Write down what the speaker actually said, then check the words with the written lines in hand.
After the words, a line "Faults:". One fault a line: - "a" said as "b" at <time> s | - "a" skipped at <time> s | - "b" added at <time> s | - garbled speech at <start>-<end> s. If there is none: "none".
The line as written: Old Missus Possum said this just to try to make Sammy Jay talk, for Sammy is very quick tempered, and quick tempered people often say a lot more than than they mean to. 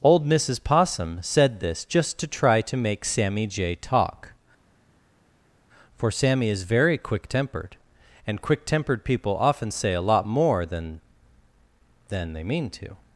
Old Missus Possum said this just to try to make Sammy Jay talk, for Sammy is very quick tempered, and quick tempered people often say a lot more than than they mean to.
Faults:
none